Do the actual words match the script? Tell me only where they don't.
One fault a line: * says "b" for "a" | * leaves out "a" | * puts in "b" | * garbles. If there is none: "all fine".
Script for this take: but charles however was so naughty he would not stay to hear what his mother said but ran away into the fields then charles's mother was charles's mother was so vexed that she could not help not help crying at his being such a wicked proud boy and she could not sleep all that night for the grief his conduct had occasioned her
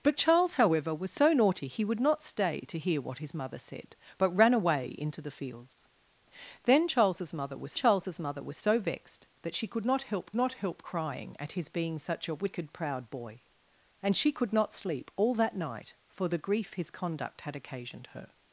all fine